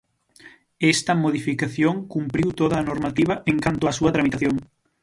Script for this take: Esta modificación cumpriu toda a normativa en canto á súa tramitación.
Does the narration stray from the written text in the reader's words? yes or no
no